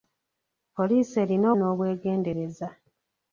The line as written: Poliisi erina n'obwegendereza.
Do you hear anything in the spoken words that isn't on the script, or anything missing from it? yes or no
no